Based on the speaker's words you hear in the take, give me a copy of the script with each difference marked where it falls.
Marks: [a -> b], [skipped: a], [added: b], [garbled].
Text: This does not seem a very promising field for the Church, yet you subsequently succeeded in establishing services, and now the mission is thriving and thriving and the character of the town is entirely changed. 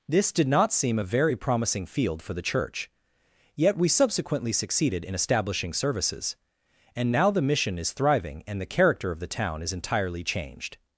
This [does -> did] not seem a very promising field for the Church, yet [you -> we] subsequently succeeded in establishing services, and now the mission is thriving and [skipped: thriving and] the character of the town is entirely changed.